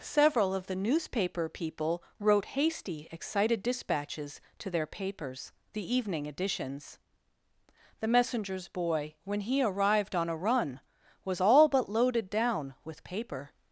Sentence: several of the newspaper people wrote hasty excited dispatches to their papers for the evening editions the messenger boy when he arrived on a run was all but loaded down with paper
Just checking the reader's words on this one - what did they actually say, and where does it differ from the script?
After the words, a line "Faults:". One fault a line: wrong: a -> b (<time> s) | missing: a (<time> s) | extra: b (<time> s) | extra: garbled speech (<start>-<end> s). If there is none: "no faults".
several of the newspaper people wrote hasty excited dispatches to their papers the evening editions the messengers boy when he arrived on a run was all but loaded down with paper
Faults:
missing: for (5.5 s)
wrong: messenger -> messengers (8.1 s)